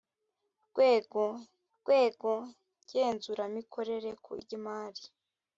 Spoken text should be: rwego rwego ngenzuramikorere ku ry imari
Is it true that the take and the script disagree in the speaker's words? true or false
false